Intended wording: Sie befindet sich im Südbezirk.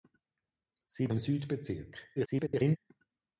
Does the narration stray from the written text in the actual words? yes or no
yes